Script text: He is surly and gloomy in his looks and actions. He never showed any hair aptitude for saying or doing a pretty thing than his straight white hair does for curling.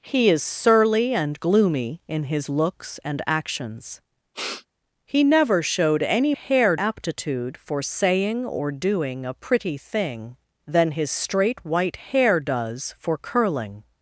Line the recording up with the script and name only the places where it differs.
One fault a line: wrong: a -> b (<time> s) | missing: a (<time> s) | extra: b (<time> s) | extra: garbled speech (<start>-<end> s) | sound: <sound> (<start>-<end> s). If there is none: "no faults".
sound: sniff (4.3-4.7 s)